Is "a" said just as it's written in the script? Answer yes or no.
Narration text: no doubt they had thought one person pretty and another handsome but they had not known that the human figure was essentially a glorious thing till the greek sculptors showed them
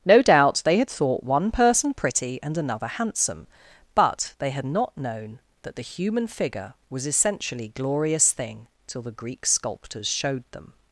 no